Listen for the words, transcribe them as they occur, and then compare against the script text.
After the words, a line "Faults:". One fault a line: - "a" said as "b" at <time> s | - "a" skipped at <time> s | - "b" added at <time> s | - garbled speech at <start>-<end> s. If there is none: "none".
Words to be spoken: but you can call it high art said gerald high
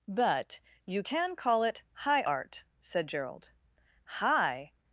but you can call it high art said gerald high
Faults:
none